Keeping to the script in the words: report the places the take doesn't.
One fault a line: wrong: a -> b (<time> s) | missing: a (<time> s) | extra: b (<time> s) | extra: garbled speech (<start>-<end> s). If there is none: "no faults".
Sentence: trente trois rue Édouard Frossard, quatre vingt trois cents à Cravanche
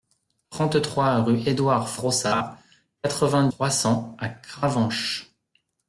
no faults